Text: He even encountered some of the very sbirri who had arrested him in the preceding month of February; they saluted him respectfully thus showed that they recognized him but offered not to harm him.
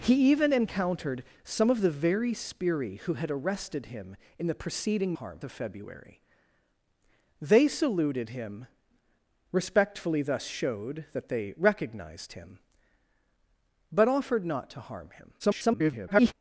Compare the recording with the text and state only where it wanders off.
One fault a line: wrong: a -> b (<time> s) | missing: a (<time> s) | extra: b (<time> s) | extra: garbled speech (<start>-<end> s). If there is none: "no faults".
wrong: month -> harm (5.1 s)
extra: garbled speech (15.4-16.3 s)